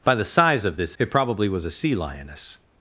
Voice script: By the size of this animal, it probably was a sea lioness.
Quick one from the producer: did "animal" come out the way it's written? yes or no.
no